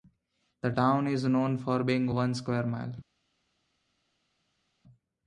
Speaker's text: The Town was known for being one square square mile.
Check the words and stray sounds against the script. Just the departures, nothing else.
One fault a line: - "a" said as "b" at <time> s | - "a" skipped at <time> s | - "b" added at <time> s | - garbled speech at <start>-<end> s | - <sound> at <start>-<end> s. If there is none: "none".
- "was" said as "is" at 1.1 s
- "square" skipped at 2.7 s